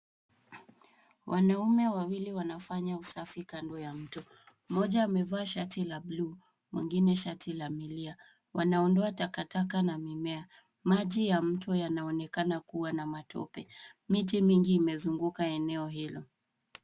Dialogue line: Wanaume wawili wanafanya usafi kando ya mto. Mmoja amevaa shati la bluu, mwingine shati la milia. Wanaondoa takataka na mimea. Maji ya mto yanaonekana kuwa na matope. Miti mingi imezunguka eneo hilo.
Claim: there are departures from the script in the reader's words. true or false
false